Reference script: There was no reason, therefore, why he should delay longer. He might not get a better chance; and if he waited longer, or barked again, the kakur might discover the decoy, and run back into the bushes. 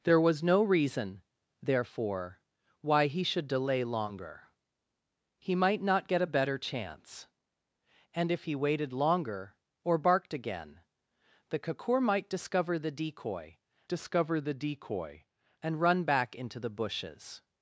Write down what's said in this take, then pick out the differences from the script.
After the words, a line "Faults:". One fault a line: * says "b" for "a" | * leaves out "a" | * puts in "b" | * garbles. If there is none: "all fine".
There was no reason, therefore, why he should delay longer. He might not get a better chance; and if he waited longer, or barked again, the kakur might discover the decoy discover the decoy, and run back into the bushes.
Faults:
* puts in "discover the decoy"